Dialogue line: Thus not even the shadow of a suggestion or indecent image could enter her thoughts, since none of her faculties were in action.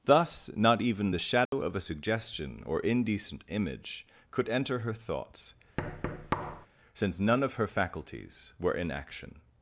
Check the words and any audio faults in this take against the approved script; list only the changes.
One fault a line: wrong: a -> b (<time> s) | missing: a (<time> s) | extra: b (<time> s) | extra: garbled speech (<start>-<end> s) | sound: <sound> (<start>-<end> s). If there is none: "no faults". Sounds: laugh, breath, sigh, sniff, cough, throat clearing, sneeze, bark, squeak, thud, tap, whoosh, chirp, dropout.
sound: dropout (1.5-1.5 s)
sound: thud (5.8-6.7 s)